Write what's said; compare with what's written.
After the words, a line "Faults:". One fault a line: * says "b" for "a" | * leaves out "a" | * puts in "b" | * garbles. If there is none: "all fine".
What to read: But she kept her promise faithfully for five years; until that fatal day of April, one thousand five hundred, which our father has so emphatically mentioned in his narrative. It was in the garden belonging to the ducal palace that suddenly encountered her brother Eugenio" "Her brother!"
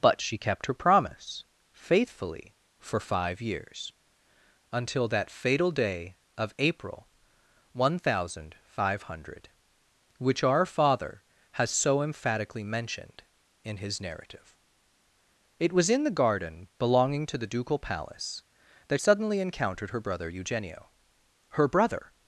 But she kept her promise faithfully for five years; until that fatal day of April, one thousand five hundred, which our father has so emphatically mentioned in his narrative. It was in the garden belonging to the ducal palace that suddenly encountered her brother Eugenio" "Her brother!"
Faults:
all fine